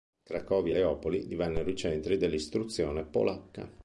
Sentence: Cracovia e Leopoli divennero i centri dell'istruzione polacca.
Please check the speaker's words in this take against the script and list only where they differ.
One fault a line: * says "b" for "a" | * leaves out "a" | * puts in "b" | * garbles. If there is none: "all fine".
all fine